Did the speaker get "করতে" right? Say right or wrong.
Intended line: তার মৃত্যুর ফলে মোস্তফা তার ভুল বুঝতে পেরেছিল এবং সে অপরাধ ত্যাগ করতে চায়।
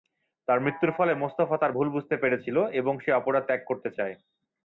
right